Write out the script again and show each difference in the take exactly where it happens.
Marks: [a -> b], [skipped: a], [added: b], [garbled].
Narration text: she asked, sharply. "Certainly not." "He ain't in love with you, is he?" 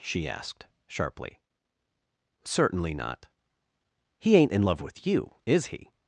she asked, sharply. "Certainly not." "He ain't in love with you, is he?"